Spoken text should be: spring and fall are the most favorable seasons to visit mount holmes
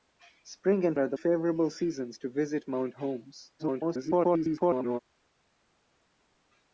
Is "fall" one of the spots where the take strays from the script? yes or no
yes